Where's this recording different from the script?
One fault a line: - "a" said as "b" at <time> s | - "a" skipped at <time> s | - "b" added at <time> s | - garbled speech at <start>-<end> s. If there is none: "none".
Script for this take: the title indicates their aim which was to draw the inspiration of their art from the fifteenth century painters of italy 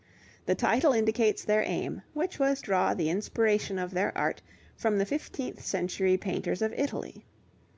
- "to" skipped at 2.6 s